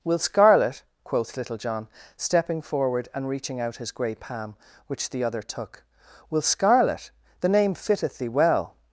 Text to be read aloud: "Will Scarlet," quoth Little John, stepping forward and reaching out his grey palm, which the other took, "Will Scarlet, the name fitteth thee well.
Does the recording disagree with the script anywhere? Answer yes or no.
no